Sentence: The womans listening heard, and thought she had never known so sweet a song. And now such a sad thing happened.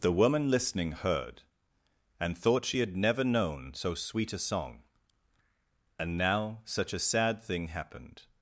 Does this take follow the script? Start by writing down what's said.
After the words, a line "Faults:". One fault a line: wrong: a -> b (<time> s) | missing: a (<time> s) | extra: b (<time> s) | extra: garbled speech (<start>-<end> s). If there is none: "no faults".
The woman listening heard, and thought she had never known so sweet a song. And now such a sad thing happened.
Faults:
wrong: womans -> woman (0.1 s)